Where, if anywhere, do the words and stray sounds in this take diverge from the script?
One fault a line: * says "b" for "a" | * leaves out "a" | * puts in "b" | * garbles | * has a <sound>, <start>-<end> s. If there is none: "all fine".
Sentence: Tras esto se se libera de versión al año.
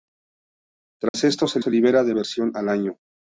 * has a dropout, 1.1-1.1 s